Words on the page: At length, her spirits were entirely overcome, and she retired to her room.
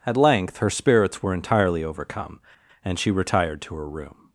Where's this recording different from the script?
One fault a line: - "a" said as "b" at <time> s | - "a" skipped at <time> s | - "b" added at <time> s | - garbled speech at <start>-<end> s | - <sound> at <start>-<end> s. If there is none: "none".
none